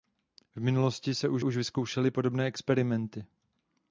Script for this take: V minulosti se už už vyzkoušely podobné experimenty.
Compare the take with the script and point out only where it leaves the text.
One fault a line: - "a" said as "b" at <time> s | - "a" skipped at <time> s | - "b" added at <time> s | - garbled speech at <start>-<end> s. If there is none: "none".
none